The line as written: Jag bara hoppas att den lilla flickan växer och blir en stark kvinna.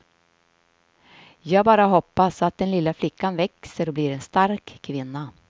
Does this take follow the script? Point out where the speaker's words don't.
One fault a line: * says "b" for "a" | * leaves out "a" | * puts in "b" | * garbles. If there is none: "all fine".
all fine